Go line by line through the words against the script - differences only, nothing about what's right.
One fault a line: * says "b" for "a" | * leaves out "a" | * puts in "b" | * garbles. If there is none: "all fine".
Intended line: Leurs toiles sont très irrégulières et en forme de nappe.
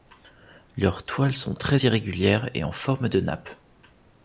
all fine